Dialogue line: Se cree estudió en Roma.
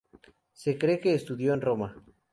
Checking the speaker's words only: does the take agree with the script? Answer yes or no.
no